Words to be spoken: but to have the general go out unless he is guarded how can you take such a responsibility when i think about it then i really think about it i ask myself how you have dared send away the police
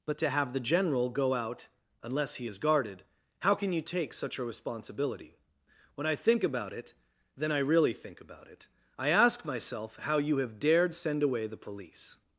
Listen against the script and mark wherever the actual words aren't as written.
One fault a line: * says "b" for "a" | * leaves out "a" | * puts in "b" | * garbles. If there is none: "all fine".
all fine